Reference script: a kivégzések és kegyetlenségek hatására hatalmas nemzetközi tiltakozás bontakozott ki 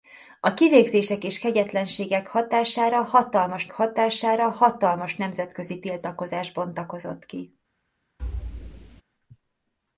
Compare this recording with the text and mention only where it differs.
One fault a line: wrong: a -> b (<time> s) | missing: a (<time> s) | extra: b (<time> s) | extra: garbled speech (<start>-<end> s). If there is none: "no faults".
extra: hatására hatalmas (3.7 s)